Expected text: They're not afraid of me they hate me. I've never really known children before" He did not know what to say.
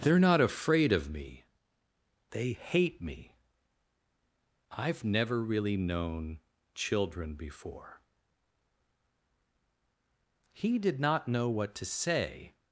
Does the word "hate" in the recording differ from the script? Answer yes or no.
no